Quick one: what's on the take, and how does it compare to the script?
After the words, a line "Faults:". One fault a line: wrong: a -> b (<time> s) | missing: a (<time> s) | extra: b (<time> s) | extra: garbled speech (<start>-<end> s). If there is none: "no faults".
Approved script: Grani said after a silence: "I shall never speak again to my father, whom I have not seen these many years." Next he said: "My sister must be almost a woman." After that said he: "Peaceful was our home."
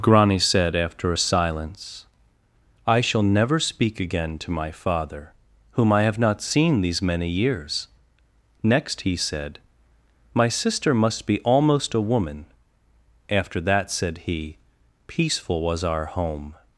Grani said after a silence: "I shall never speak again to my father, whom I have not seen these many years." Next he said: "My sister must be almost a woman." After that said he: "Peaceful was our home."
Faults:
no faults